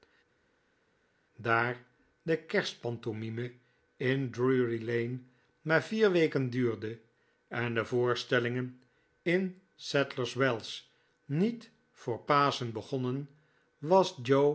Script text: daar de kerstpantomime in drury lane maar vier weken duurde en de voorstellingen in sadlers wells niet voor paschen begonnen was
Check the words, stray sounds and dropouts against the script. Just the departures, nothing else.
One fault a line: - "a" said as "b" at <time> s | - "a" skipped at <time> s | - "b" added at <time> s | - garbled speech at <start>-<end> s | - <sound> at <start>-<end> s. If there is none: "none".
none